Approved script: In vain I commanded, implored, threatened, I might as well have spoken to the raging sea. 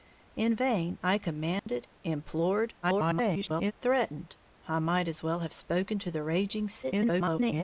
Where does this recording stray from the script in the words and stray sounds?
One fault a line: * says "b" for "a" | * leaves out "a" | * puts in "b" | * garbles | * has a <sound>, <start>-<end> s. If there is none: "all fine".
* has a dropout, 1.6-1.7 s
* garbles
* garbles